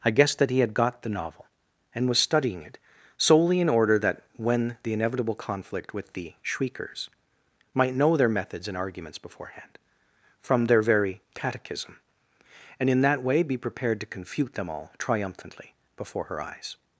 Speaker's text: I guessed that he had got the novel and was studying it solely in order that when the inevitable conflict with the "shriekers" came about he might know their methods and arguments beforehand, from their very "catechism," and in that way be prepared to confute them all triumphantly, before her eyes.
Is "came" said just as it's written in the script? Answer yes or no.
no